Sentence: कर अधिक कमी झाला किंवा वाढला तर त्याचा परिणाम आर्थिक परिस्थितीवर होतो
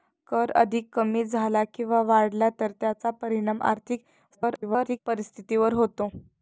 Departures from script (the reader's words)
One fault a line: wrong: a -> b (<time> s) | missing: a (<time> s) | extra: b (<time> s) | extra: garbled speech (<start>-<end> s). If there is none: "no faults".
extra: garbled speech (4.3-5.0 s)